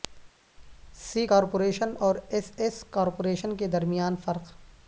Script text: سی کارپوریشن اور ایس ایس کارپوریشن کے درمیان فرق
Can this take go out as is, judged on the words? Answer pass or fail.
pass